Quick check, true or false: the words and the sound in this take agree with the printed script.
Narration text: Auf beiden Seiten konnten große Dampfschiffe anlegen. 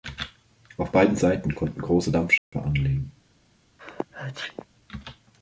false